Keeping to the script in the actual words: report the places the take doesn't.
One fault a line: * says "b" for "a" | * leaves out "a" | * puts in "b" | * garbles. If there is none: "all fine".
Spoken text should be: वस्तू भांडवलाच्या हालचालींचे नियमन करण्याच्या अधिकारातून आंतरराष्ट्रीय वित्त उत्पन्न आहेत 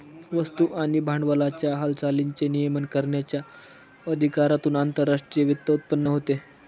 * puts in "आणि"
* says "होते" for "आहेत"